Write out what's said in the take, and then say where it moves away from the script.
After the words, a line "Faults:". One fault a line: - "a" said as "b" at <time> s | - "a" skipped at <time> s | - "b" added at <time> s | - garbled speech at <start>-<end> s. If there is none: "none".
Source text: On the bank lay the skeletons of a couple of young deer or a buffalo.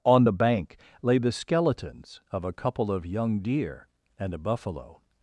On the bank lay the skeletons of a couple of young deer and a buffalo.
Faults:
- "or" said as "and" at 4.2 s